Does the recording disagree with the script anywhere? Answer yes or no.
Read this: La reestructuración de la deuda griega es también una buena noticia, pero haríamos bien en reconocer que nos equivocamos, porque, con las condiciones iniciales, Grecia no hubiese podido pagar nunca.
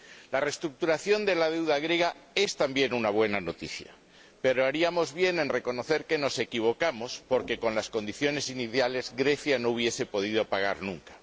no